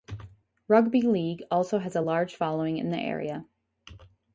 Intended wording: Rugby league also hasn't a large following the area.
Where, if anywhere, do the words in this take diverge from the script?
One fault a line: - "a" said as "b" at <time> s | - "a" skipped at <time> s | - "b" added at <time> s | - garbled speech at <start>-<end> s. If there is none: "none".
- "hasn't" said as "has" at 1.8 s
- "in" added at 2.8 s